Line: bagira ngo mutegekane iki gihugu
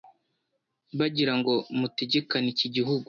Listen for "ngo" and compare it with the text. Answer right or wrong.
right